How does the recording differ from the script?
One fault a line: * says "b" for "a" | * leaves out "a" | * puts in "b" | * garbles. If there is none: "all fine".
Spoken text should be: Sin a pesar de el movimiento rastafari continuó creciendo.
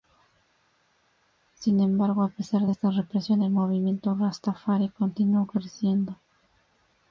* puts in "embargo"
* puts in "esta represión"